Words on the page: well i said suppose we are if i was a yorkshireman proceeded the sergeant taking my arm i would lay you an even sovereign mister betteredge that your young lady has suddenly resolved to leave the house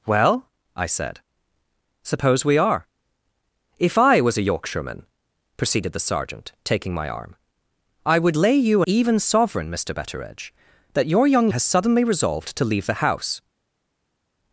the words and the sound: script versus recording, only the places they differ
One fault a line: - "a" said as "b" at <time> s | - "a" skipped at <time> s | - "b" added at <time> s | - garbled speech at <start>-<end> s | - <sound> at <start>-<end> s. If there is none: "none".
- "an" skipped at 8.8 s
- "lady" skipped at 11.5 s